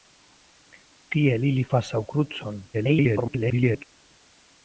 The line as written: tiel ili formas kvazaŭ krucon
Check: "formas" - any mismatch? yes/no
yes